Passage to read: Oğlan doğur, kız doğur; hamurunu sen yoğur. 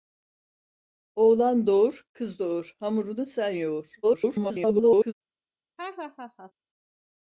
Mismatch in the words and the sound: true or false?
true